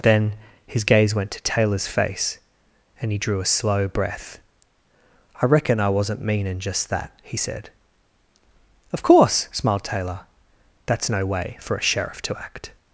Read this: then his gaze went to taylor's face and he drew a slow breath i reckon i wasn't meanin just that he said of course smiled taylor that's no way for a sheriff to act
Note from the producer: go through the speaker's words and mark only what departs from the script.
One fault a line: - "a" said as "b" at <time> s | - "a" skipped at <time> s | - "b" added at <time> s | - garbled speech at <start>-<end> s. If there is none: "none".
none